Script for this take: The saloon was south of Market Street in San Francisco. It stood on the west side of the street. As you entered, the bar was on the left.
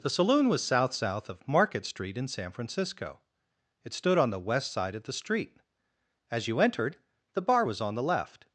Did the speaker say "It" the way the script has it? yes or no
yes